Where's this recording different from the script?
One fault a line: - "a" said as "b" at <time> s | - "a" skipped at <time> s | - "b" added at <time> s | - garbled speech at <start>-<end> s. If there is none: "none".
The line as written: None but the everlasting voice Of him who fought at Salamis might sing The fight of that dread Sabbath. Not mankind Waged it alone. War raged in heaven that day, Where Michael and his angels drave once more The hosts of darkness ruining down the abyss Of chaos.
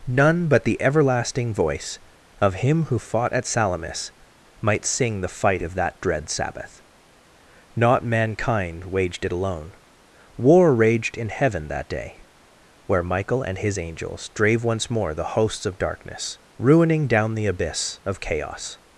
none